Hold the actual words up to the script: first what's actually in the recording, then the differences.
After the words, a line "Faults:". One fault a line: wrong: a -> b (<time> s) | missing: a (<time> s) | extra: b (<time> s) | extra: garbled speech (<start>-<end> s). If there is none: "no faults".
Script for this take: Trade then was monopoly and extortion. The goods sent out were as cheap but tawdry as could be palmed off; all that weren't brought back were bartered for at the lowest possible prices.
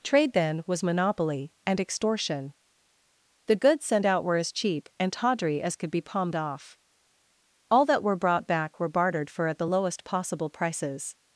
Trade then was monopoly and extortion. The goods sent out were as cheap and tawdry as could be palmed off; all that were brought back were bartered for at the lowest possible prices.
Faults:
wrong: but -> and (5.0 s)
wrong: weren't -> were (8.0 s)